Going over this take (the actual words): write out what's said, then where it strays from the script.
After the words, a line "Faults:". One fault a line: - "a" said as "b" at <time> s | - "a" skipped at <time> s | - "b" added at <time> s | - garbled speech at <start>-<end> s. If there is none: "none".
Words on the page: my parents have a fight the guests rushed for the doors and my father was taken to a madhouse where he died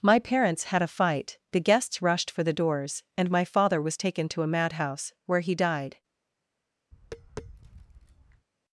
my parents had a fight the guests rushed for the doors and my father was taken to a madhouse where he died
Faults:
- "have" said as "had" at 0.7 s